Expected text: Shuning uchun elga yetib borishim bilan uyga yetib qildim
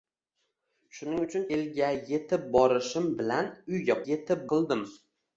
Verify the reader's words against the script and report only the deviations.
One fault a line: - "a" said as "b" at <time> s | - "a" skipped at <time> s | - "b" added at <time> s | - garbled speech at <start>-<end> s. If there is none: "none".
none